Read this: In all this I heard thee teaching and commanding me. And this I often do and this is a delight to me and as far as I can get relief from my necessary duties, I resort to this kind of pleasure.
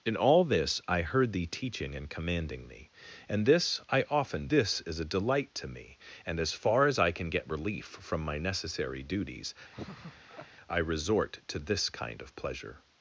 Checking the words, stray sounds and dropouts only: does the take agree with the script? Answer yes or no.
no